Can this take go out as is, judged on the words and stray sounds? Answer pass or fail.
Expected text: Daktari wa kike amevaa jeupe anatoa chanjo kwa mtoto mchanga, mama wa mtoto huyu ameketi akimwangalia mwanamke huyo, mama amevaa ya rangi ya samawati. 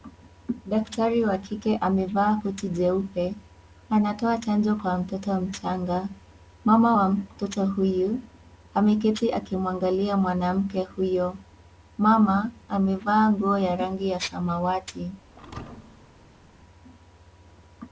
fail